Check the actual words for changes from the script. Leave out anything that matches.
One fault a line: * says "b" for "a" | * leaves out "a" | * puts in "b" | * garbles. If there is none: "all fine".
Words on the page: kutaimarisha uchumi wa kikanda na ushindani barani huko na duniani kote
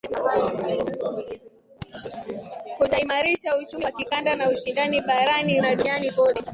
* leaves out "huko"